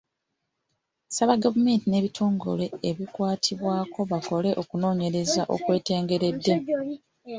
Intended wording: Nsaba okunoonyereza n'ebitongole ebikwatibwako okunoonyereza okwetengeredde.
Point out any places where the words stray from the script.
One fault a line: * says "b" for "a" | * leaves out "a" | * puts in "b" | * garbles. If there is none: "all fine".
* says "gavumenti" for "okunoonyereza"
* puts in "bakole"